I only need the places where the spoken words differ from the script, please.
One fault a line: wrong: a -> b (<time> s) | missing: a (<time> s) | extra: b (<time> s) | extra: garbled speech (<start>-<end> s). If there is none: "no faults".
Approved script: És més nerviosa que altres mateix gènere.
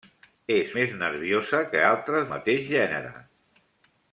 no faults